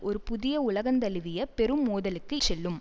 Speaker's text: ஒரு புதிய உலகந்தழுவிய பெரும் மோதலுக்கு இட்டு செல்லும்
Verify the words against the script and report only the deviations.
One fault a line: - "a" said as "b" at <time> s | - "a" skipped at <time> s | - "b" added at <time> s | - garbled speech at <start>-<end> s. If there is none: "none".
- "இட்டு" skipped at 2.3 s